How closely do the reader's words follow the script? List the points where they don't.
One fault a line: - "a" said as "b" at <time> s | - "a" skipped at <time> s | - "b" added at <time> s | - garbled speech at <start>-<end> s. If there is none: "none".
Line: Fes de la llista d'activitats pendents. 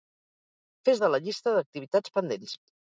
none